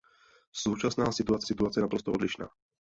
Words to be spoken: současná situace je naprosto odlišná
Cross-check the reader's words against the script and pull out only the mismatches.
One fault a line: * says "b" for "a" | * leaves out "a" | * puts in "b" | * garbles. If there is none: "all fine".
* puts in "situace"